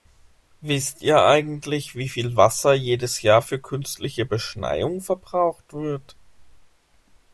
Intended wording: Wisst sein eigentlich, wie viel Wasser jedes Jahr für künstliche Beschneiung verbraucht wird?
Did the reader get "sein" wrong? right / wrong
wrong